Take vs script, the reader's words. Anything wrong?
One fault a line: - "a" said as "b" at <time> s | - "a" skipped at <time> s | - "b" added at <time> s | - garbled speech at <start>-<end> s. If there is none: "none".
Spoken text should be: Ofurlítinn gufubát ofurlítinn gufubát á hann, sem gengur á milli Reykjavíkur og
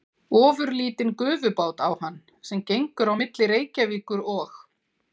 - "ofurlítinn gufubát" skipped at 1.8 s